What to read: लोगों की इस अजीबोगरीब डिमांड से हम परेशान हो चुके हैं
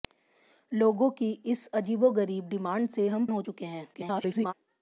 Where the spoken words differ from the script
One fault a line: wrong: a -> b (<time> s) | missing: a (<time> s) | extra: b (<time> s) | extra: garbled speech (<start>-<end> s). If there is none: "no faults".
missing: परेशान (3.3 s)
extra: garbled speech (3.9-4.5 s)